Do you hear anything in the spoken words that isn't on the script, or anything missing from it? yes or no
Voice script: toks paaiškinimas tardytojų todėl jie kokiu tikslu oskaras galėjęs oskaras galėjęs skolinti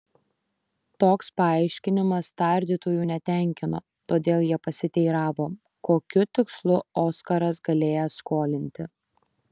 yes